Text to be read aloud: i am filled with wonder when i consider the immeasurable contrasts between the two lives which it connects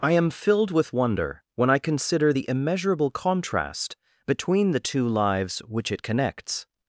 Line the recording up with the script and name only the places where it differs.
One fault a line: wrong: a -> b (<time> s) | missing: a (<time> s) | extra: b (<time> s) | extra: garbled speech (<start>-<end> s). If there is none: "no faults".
wrong: contrasts -> contrast (3.1 s)